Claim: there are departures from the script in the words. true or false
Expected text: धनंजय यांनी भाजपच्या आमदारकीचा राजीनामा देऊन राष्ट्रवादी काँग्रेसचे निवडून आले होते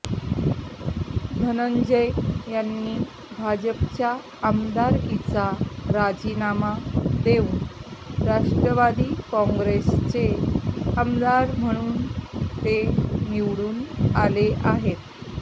true